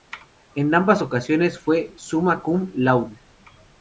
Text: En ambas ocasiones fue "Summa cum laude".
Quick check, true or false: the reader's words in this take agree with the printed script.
true